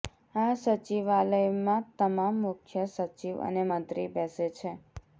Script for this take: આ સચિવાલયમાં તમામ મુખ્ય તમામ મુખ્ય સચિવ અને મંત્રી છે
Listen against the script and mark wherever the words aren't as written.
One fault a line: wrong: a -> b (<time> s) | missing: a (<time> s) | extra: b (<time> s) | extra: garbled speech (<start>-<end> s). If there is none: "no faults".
missing: તમામ મુખ્ય (2.8 s)
extra: બેસે (4.1 s)